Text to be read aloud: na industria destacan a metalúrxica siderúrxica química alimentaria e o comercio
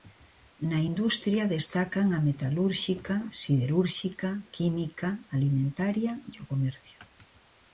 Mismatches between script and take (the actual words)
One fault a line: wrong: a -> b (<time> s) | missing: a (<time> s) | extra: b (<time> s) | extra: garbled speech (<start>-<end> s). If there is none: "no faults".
no faults